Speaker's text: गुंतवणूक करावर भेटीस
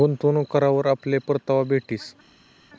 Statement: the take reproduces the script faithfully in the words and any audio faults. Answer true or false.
false